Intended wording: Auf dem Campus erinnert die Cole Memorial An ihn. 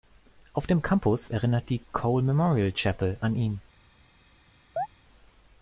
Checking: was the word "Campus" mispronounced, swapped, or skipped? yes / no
no